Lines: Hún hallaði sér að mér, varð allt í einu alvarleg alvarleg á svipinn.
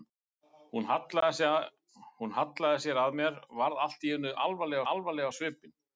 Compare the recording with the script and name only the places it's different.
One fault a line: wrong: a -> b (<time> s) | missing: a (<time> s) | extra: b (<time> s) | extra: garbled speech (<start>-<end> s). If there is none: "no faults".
no faults